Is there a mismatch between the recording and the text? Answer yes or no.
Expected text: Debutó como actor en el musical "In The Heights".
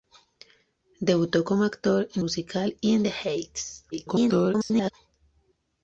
yes